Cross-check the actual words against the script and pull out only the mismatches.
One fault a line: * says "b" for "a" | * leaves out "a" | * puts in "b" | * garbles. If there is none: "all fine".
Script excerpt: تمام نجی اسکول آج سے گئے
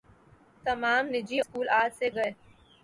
all fine